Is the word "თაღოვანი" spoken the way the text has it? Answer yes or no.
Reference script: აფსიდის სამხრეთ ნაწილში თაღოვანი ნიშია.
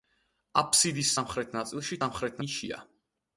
no